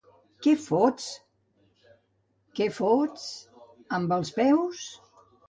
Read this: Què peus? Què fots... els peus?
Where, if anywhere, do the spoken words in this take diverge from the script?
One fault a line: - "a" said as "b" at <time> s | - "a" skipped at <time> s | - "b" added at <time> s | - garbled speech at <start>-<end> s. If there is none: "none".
- "peus" said as "fots" at 0.6 s
- "amb" added at 4.0 s